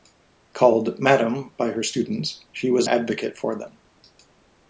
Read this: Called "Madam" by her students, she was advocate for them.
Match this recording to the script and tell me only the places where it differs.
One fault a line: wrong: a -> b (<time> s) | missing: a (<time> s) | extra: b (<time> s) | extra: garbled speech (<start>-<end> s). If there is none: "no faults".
no faults